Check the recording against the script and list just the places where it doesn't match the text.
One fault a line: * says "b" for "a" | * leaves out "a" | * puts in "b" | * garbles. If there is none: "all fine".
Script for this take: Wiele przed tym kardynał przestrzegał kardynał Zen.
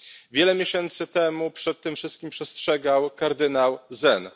* puts in "miesięcy temu"
* says "wszystkim" for "kardynał"